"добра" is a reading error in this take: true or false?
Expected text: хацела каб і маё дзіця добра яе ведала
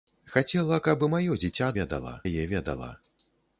true